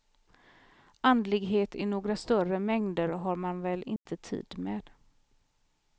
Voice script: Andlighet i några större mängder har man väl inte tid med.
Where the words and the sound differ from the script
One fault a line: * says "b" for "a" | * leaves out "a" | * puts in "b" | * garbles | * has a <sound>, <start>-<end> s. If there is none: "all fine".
* has a dropout, 4.0-4.1 s